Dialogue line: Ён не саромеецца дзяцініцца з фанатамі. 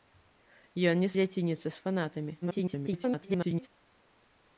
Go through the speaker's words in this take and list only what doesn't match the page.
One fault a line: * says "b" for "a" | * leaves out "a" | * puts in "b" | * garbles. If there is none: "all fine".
* leaves out "саромеецца"
* garbles